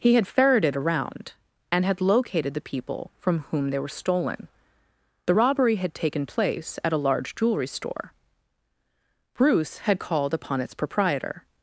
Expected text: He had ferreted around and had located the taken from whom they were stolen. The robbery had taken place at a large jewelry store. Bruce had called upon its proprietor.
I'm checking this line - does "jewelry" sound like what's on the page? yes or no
yes